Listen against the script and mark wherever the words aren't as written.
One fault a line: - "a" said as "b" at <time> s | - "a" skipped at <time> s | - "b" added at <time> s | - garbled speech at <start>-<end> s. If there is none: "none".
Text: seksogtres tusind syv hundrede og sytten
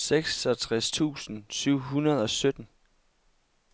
none